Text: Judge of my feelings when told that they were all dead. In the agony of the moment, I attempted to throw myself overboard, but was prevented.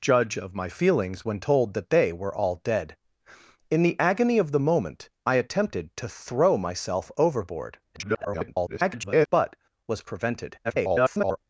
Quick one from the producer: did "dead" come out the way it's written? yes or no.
yes